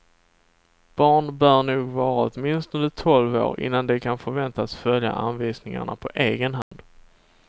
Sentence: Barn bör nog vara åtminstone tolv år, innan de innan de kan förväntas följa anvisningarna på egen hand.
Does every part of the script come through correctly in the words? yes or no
no